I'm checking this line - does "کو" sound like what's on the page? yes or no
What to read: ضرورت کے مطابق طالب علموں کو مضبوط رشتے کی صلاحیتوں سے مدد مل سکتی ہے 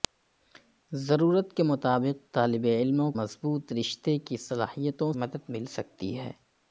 no